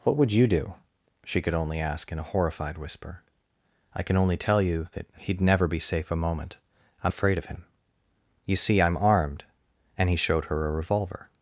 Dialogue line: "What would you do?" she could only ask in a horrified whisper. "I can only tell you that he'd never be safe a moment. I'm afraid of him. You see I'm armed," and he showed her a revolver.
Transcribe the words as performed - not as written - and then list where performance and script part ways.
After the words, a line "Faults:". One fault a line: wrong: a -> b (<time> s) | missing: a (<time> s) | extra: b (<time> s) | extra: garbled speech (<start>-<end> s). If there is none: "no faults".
"What would you do?" she could only ask in a horrified whisper. "I can only tell you that he'd never be safe a moment. I'm afraid of him. You see I'm armed," and he showed her a revolver.
Faults:
no faults